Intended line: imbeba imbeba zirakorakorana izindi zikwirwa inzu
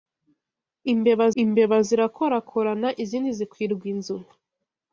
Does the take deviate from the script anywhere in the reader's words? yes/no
no